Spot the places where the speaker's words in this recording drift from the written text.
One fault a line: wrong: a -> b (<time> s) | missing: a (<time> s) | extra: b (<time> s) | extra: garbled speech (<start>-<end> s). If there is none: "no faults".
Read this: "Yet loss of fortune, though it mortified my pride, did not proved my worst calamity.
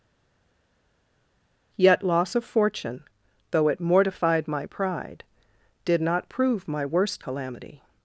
wrong: proved -> prove (6.3 s)